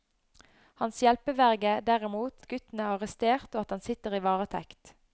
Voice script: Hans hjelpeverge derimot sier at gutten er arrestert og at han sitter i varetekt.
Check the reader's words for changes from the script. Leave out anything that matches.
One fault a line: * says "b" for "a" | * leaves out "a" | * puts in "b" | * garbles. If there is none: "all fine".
* leaves out "sier"